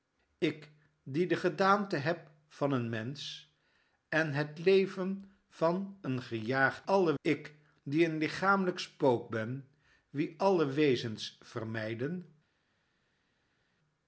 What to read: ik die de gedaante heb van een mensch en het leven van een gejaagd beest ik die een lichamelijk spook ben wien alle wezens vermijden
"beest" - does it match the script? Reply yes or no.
no